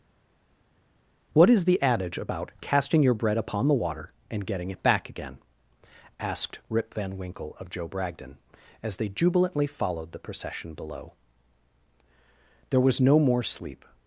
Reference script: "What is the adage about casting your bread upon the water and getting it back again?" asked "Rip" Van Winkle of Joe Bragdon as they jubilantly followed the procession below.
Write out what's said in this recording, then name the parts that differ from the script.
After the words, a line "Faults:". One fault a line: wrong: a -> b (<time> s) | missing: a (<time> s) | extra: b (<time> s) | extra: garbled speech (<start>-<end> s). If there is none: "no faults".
"What is the adage about casting your bread upon the water and getting it back again?" asked "Rip" Van Winkle of Joe Bragdon as they jubilantly followed the procession below. There was no more sleep
Faults:
extra: There was no more sleep (12.7 s)